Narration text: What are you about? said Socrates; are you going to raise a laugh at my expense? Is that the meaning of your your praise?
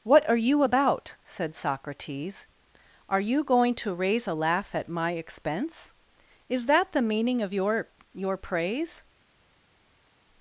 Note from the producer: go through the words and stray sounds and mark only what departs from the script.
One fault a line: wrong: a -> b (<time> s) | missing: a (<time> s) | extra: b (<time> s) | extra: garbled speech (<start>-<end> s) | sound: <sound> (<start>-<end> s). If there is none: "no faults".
no faults